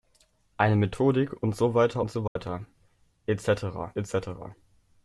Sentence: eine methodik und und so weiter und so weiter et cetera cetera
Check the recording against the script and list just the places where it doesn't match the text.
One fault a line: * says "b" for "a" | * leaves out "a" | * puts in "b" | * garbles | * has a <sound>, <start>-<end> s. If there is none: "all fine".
* leaves out "und"
* has a dropout, 2.3-2.4 s
* puts in "et"